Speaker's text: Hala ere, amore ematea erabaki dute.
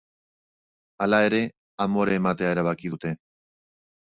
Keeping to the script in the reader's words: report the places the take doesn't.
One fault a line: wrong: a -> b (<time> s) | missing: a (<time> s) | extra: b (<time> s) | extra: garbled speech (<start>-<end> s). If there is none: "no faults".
no faults